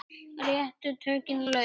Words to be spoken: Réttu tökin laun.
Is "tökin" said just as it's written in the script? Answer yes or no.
yes